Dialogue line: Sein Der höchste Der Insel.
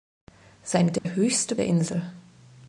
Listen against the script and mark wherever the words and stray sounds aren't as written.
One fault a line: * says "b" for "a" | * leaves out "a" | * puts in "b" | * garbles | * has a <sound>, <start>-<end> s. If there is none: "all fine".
* has a dropout, 1.0-1.1 s